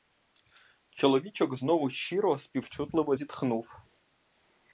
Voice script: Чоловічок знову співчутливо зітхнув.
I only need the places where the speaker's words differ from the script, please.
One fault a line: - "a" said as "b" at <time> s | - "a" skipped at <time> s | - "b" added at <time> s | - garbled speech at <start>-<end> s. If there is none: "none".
- "щиро" added at 1.9 s